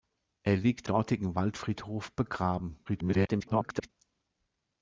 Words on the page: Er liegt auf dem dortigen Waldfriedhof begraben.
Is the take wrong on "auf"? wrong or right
wrong